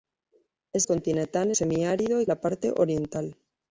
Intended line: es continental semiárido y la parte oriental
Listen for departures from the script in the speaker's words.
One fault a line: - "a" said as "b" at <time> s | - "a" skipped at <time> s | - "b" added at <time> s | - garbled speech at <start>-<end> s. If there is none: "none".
none